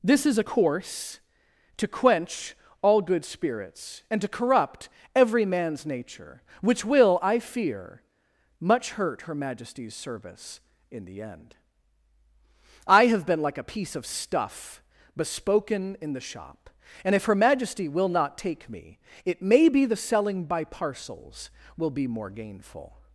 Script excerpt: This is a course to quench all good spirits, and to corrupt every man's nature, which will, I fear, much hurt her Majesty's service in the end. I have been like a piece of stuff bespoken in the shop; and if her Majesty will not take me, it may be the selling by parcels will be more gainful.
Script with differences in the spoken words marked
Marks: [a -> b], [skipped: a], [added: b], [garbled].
This is a course to quench all good spirits, and to corrupt every man's nature, which will, I fear, much hurt her Majesty's service in the end. I have been like a piece of stuff bespoken in the shop; and if her Majesty will not take me, it may be the selling by parcels will be more gainful.